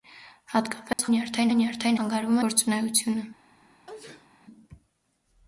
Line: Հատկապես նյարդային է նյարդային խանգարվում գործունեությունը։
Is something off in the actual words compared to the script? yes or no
no